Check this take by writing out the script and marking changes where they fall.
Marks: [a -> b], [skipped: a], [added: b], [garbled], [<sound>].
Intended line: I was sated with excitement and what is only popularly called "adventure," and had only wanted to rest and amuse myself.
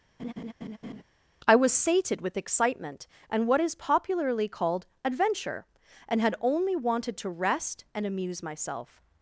[laugh] I was sated with excitement and what is [skipped: only] popularly called "adventure," and had only wanted to rest and amuse myself.